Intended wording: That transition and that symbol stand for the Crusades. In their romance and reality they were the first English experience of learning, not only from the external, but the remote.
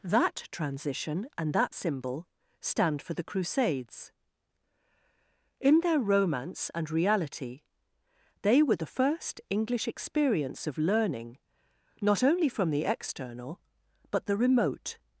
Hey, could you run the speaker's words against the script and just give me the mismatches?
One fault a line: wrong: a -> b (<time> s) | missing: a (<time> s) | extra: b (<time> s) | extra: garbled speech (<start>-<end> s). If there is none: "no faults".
no faults